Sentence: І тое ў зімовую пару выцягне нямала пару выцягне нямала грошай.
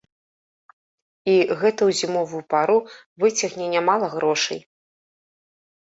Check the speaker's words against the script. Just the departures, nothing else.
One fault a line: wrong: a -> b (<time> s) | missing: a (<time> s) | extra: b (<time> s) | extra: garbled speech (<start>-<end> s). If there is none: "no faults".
wrong: тое -> гэта (1.6 s)
missing: пару выцягне нямала (4.1 s)